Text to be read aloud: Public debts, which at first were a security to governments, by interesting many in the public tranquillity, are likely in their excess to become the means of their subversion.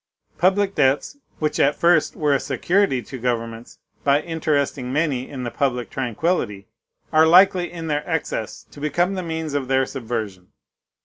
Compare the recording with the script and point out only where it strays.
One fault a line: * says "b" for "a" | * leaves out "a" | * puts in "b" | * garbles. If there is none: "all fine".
all fine